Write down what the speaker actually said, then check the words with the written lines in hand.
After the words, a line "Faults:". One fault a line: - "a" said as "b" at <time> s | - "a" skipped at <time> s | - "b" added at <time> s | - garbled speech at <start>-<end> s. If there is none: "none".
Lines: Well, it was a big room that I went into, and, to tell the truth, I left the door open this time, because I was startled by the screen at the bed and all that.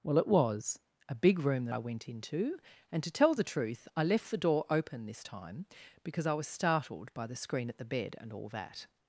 Well, it was a big room that I went into, and, to tell the truth, I left the door open this time, because I was startled by the screen at the bed and all that.
Faults:
none